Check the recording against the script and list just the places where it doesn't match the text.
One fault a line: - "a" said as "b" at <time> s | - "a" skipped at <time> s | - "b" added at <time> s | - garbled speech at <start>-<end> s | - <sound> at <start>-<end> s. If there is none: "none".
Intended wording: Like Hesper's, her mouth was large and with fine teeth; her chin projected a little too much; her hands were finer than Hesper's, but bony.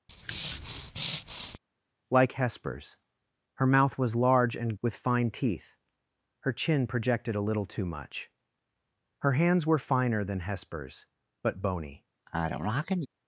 - breath at 0.1-1.6 s
- sneeze at 12.3-13.1 s